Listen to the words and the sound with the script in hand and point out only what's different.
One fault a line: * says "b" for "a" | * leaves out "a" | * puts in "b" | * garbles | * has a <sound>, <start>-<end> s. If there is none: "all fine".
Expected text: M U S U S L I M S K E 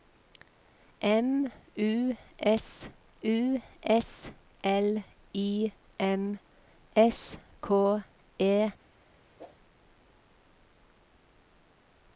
* has a whoosh, 9.4-9.6 s